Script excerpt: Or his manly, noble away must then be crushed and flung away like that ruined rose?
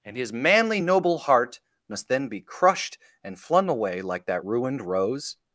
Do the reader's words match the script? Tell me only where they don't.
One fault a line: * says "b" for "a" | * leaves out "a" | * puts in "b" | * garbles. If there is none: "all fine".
* says "And" for "Or"
* says "heart" for "away"